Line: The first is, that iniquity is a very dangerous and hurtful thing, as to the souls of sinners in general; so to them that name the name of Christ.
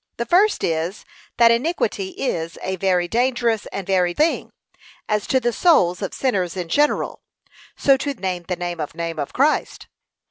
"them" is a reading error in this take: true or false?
true